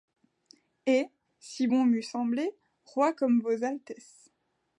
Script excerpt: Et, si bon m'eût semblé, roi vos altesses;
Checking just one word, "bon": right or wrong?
right